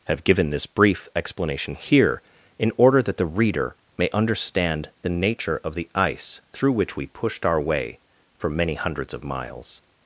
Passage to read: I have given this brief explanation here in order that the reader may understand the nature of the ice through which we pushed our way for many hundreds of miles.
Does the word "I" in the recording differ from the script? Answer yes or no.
yes